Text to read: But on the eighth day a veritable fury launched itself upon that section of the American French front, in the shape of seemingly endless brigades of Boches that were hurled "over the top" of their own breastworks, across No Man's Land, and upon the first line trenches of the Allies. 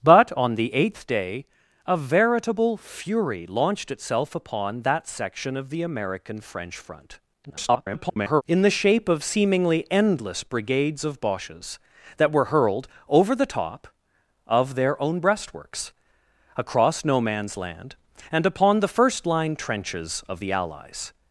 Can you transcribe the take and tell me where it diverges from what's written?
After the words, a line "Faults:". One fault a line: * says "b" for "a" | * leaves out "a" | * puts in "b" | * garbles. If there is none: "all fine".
But on the eighth day a veritable fury launched itself upon that section of the American French front, [garbled] in the shape of seemingly endless brigades of Boches that were hurled "over the top" of their own breastworks, across No Man's Land, and upon the first line trenches of the Allies.
Faults:
* garbles